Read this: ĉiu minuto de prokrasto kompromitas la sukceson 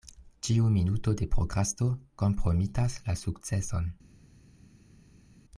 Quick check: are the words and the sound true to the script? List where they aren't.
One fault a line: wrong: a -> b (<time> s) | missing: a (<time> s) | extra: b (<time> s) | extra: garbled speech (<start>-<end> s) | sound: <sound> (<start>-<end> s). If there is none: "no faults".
no faults